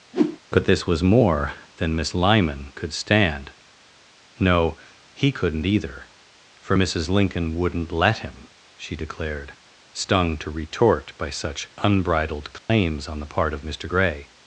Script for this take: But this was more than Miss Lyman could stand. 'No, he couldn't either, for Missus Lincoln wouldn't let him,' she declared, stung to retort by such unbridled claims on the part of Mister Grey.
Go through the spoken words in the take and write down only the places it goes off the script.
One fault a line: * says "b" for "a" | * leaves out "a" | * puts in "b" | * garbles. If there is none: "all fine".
all fine